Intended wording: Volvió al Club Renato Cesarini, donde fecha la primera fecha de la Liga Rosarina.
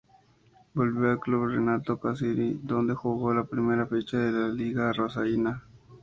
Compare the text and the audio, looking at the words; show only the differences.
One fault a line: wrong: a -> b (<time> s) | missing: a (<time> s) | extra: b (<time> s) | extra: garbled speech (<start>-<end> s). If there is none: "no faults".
wrong: fecha -> jugó (3.0 s)